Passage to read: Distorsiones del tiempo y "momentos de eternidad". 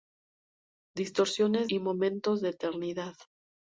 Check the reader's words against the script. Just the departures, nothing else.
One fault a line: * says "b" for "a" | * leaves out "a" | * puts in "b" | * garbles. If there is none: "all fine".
* leaves out "del tiempo"